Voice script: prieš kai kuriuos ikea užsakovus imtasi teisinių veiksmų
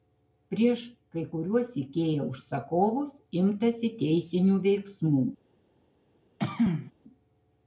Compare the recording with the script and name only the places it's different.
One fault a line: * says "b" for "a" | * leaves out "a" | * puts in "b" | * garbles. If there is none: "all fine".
all fine